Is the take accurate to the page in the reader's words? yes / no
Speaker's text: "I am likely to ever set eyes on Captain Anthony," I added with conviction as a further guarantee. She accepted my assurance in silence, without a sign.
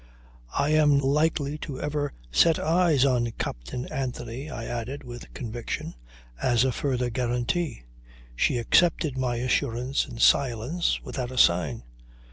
yes